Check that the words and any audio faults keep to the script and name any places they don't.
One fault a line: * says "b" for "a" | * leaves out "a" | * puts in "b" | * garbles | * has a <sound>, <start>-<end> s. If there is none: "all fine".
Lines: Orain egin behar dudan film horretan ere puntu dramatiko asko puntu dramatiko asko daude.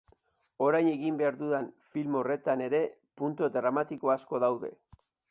* leaves out "puntu dramatiko asko"